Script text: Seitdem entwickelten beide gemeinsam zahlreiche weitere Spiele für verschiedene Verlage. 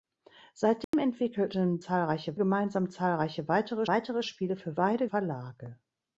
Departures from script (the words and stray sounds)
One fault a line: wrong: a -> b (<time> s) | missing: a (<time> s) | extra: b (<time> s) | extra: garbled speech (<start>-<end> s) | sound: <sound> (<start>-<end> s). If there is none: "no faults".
sound: dropout (0.8-0.9 s)
wrong: beide -> zahlreiche (1.8 s)
extra: weitere (3.9 s)
wrong: verschiedene -> beide (4.7 s)